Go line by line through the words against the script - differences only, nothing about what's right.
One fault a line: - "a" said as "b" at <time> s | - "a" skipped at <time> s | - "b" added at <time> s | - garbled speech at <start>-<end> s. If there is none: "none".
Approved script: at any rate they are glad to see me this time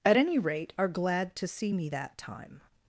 - "they" skipped at 0.7 s
- "this" said as "that" at 1.9 s